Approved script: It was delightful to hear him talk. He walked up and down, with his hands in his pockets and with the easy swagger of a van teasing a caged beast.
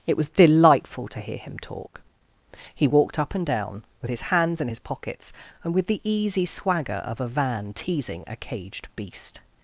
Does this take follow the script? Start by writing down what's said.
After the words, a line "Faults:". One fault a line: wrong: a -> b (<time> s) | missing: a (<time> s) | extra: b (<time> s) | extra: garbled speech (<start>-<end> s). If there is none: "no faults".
It was delightful to hear him talk. He walked up and down, with his hands in his pockets and with the easy swagger of a van teasing a caged beast.
Faults:
no faults